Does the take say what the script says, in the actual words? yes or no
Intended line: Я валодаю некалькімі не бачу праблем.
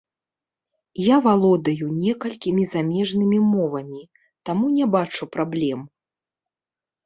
no